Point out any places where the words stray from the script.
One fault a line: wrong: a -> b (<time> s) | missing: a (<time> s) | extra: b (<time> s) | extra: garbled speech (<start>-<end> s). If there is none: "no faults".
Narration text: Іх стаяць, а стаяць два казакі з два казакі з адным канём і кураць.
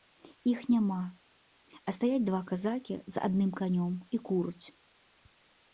wrong: стаяць -> няма (0.8 s)
missing: два казакі з (3.3 s)